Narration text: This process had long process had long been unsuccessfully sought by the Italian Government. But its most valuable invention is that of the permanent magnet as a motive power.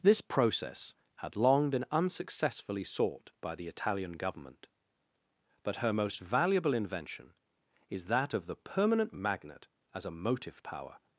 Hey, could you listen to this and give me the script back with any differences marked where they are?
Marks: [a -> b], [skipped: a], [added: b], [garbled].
This process had long [skipped: process had long] been unsuccessfully sought by the Italian Government. But [its -> her] most valuable invention is that of the permanent magnet as a motive power.